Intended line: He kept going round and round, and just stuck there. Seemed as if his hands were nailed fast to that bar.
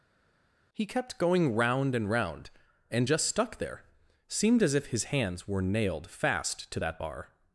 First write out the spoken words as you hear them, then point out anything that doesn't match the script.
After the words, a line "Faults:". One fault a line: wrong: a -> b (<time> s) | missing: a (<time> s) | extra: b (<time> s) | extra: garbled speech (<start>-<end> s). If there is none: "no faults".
He kept going round and round, and just stuck there. Seemed as if his hands were nailed fast to that bar.
Faults:
no faults